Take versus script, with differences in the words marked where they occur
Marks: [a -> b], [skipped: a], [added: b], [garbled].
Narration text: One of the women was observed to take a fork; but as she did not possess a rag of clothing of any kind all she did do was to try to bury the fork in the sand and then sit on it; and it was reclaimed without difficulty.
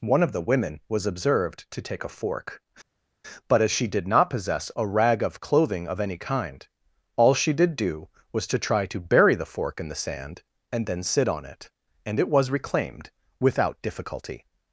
One of the women was observed to take a fork; but as she did not possess a rag of clothing of any kind all she did do was to try to bury the fork in the sand and then sit on it; and it was reclaimed without difficulty.